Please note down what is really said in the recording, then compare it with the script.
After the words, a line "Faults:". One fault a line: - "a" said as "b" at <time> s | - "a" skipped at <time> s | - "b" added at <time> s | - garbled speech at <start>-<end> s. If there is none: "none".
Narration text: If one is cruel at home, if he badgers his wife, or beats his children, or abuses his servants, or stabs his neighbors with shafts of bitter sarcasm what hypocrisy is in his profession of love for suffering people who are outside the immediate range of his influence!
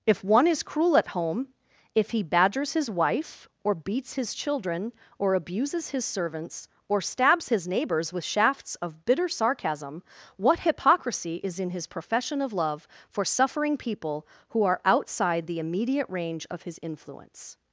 If one is cruel at home, if he badgers his wife, or beats his children, or abuses his servants, or stabs his neighbors with shafts of bitter sarcasm what hypocrisy is in his profession of love for suffering people who are outside the immediate range of his influence!
Faults:
none